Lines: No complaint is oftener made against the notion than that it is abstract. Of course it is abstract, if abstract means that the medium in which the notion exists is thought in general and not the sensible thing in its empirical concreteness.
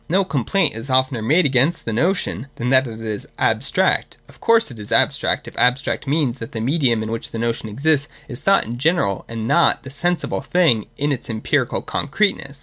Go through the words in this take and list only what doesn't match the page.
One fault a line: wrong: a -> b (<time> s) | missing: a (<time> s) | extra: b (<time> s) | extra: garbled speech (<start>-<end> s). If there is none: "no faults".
no faults